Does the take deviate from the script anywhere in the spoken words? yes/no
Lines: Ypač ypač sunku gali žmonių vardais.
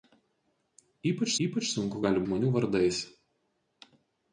no